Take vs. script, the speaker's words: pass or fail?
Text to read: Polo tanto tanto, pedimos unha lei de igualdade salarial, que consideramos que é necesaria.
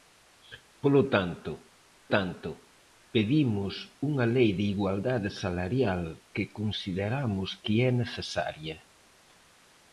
pass